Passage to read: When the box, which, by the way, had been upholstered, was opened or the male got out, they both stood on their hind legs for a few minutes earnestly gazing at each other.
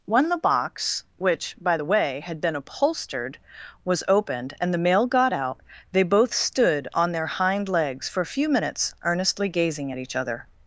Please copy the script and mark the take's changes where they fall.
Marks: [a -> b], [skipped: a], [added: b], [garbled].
When the box, which, by the way, had been upholstered, was opened [or -> and] the male got out, they both stood on their hind legs for a few minutes earnestly gazing at each other.